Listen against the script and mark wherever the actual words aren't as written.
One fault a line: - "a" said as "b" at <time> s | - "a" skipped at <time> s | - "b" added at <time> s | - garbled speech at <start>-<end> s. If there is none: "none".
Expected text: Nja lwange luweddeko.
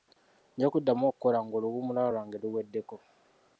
- "kuddamu okukola ng'oluwummula" added at 0.7 s